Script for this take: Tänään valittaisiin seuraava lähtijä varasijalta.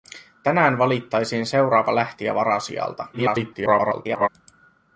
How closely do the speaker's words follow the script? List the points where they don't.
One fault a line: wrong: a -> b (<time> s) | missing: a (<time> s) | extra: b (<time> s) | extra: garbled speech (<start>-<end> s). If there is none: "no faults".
extra: garbled speech (3.1-4.3 s)